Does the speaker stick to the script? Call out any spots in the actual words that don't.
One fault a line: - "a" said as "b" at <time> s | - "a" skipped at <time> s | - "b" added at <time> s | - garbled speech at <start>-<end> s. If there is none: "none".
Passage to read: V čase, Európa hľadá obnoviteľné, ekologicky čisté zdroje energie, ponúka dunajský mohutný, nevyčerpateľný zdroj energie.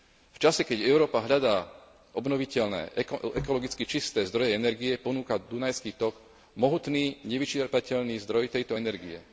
- "keď" added at 0.7 s
- "tok" added at 6.0 s
- "tejto" added at 8.5 s